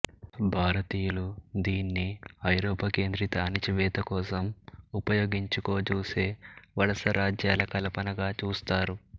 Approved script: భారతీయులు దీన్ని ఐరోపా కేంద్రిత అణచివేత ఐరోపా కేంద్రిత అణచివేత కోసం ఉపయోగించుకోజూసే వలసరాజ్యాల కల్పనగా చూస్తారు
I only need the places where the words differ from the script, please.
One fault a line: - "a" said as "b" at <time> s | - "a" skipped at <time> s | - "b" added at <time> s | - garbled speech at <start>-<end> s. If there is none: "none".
- "ఐరోపా కేంద్రిత అణచివేత" skipped at 4.0 s